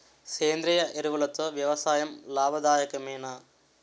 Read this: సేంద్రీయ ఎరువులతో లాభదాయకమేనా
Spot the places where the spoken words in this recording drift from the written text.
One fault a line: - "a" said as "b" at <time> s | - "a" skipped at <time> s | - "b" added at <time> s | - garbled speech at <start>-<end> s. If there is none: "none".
- "వ్యవసాయం" added at 1.5 s